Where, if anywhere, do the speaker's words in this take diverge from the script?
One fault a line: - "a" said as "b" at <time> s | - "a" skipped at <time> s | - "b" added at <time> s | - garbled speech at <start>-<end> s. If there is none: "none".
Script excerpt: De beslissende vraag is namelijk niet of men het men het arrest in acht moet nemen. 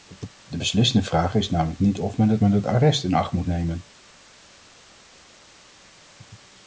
none